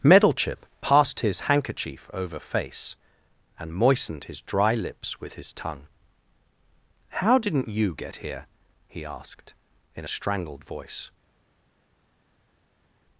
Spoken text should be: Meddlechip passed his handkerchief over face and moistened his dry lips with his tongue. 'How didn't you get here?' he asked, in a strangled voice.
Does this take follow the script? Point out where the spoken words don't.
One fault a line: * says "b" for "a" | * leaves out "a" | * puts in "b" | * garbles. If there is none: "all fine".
all fine